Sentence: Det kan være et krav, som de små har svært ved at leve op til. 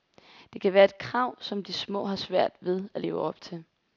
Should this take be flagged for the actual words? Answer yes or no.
no